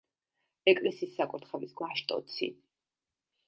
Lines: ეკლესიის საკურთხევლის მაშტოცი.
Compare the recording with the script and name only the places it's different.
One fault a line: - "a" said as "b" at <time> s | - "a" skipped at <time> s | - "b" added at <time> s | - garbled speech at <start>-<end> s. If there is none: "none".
none